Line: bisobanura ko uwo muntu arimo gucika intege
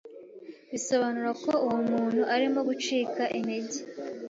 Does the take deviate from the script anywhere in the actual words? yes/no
no